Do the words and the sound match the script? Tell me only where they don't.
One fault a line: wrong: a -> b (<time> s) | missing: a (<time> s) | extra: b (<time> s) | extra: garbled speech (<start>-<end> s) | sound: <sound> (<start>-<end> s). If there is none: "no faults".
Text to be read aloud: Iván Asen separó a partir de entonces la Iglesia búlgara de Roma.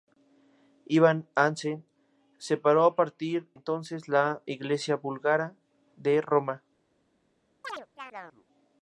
missing: de (3.5 s)
sound: chirp (7.6-8.5 s)